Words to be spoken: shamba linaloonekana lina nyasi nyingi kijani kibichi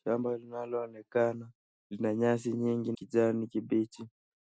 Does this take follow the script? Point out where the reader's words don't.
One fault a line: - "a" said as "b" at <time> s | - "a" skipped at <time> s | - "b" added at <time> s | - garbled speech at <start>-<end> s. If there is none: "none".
none